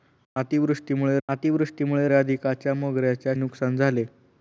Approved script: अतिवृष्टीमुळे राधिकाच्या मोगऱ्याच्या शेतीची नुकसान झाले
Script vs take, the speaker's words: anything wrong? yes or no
yes